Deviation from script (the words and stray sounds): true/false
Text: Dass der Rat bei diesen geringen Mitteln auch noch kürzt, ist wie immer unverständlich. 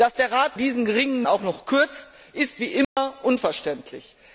true